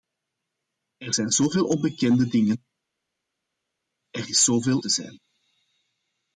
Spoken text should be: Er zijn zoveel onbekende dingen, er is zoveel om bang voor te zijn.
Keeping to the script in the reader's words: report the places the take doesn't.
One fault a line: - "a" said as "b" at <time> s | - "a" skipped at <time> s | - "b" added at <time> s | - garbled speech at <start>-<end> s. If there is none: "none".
- "om bang voor" skipped at 4.8 s